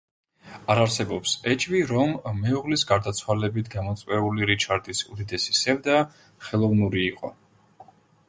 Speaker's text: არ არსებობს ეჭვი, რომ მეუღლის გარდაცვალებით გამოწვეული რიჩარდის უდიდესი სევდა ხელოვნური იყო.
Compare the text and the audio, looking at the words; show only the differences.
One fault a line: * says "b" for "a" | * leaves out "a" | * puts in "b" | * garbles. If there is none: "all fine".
all fine